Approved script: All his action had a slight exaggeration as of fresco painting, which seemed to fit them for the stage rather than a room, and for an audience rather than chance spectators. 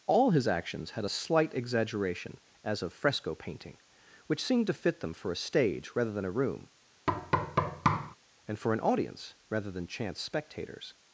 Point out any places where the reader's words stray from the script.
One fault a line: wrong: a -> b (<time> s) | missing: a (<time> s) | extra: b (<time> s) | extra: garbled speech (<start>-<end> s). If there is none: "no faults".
wrong: action -> actions (0.5 s)
wrong: the -> a (5.3 s)